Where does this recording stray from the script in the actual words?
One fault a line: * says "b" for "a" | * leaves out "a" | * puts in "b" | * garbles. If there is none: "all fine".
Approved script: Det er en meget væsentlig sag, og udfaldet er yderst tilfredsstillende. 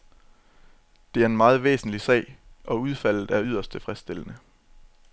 all fine